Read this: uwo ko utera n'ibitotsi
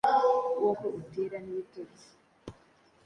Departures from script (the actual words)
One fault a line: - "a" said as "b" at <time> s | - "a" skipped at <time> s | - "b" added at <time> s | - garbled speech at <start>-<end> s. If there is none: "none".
none